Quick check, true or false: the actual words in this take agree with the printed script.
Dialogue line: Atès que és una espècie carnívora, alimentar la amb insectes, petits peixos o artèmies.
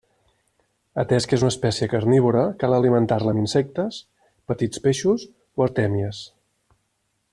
false